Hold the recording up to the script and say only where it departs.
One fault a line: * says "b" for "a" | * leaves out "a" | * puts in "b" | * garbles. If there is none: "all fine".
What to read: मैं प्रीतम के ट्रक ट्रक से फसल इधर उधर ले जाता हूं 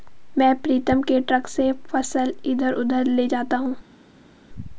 * leaves out "ट्रक"